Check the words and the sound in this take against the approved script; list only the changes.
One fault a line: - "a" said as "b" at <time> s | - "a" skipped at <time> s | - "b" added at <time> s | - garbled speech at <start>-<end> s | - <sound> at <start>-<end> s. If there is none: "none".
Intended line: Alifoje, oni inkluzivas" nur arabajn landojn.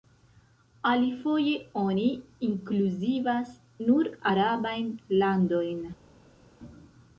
none